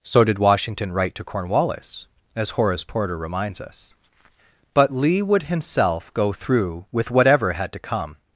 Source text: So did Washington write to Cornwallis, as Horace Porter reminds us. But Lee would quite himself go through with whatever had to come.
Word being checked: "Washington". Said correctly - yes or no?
yes